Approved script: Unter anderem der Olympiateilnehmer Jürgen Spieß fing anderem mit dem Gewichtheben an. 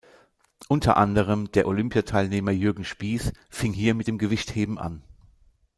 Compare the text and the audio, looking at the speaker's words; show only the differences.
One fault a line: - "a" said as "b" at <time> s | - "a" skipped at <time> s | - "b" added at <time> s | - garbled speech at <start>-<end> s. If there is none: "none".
- "anderem" said as "hier" at 3.7 s